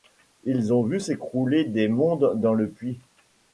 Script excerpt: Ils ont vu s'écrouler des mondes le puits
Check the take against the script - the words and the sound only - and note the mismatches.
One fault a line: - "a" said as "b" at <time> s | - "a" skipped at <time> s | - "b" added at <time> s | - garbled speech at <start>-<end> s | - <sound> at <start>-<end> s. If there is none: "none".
- "dans" added at 2.4 s